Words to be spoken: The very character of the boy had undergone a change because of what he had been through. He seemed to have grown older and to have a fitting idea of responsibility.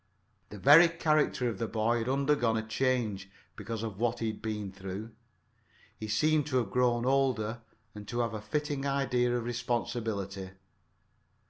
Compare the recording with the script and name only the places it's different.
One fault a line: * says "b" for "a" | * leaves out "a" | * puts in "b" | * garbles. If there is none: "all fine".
all fine